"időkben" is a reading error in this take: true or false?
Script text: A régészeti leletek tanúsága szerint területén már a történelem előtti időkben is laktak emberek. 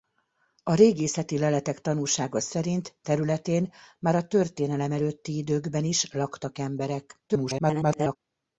false